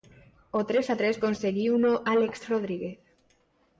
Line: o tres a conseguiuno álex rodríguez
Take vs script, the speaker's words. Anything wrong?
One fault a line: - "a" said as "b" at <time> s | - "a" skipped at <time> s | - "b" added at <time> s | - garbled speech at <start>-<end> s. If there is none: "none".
- "tres" added at 1.0 s